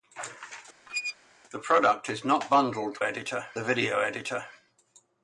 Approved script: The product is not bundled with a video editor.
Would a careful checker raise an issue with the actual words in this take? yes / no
yes